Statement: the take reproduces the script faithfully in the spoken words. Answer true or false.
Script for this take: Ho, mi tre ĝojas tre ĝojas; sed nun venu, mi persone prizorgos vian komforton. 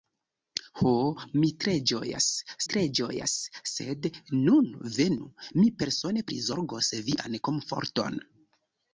true